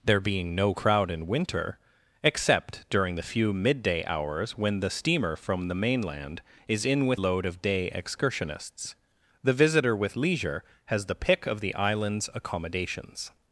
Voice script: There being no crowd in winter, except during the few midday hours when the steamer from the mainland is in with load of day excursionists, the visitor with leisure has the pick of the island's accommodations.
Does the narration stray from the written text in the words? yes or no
no